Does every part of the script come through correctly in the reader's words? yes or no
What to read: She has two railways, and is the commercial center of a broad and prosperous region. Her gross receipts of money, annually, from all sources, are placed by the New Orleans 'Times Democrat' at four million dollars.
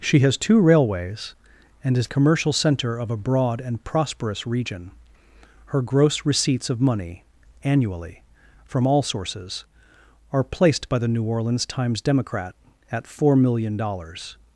no